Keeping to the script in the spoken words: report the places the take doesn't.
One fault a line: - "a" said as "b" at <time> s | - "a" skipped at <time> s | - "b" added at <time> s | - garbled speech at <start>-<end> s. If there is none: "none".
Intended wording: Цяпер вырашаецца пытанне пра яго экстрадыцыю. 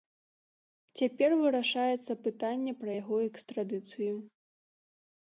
none